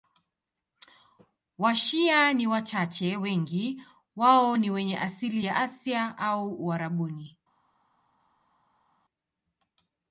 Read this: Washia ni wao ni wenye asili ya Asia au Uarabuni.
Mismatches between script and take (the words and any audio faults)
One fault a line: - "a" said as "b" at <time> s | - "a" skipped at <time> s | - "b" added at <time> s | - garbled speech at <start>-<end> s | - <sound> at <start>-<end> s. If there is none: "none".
- "wachache wengi" added at 2.5 s